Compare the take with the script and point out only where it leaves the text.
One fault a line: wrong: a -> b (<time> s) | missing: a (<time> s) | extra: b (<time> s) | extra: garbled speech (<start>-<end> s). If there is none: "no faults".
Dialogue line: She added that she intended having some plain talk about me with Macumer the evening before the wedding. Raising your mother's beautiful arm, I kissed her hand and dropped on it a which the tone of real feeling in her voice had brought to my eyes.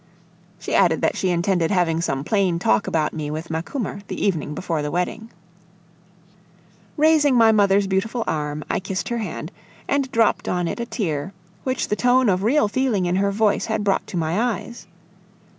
wrong: your -> my (7.3 s)
extra: tear (10.9 s)